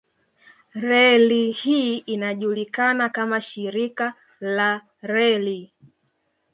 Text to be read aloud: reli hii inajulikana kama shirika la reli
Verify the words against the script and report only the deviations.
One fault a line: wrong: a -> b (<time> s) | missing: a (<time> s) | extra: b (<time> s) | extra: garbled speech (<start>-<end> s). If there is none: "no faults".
no faults